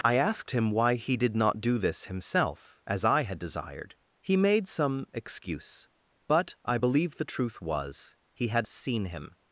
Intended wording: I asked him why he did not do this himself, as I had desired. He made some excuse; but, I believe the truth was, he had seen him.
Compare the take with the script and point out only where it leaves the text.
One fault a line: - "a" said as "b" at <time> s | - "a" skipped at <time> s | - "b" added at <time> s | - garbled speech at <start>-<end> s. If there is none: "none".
none